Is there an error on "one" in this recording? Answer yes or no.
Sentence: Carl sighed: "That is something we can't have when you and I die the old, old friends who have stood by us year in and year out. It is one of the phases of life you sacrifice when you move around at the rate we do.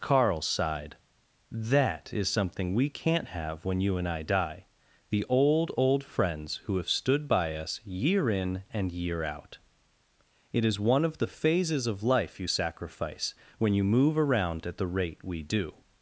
no